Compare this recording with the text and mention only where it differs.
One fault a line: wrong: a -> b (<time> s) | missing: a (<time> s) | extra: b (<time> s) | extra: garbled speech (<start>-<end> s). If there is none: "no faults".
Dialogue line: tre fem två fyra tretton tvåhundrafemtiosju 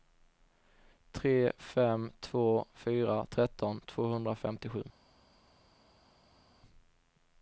no faults